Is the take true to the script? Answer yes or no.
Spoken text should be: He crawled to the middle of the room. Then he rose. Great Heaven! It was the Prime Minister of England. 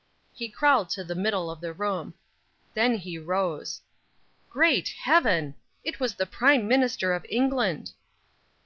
yes